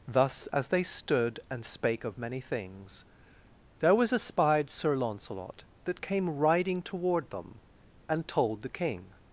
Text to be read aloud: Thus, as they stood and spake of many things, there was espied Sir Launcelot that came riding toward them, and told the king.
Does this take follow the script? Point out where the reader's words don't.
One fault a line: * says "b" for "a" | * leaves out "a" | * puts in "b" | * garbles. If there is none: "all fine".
all fine